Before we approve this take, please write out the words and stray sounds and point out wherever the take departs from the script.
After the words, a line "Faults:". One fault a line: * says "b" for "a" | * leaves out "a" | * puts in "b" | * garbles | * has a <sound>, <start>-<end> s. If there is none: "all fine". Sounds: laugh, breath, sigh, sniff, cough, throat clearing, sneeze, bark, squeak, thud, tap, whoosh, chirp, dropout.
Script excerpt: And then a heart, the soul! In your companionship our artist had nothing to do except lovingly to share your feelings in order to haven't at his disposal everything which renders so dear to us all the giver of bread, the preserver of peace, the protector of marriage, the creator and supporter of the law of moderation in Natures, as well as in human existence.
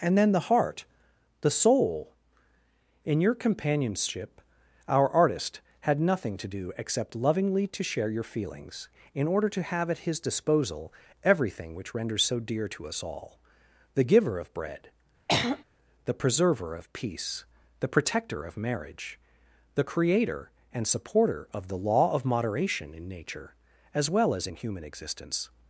And then the heart, the soul! In your companionship our artist had nothing to do except lovingly to share your feelings in order to have at his disposal everything which renders so dear to us all the giver of bread, the preserver of peace, the protector of marriage, the creator and supporter of the law of moderation in Nature, as well as in human existence.
Faults:
* says "the" for "a"
* says "have" for "haven't"
* has a throat clearing, 15.3-15.6 s
* says "Nature" for "Natures"